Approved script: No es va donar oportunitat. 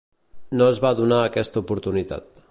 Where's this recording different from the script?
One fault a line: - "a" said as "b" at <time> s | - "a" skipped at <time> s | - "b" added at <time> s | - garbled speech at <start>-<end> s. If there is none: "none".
- "aquesta" added at 1.2 s